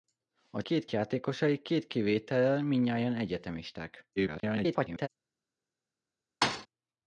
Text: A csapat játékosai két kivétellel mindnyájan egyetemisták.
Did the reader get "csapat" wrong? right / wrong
wrong